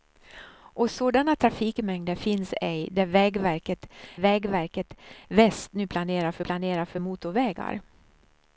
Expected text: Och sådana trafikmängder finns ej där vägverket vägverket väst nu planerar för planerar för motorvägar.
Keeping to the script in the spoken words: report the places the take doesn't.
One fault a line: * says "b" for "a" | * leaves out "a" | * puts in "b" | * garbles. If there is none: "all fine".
all fine